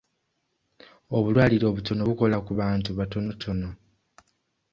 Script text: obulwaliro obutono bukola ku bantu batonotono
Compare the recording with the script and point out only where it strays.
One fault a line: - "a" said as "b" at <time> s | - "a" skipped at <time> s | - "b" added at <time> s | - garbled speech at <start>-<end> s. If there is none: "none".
none